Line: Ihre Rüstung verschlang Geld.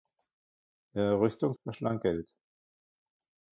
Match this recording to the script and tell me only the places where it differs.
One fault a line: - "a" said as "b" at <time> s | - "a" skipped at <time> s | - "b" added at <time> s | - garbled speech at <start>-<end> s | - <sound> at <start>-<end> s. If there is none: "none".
none